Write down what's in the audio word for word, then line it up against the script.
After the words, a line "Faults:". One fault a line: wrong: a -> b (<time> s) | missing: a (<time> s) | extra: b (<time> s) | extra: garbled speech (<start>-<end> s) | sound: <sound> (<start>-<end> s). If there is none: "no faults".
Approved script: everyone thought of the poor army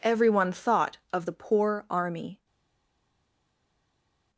everyone thought of the poor army
Faults:
no faults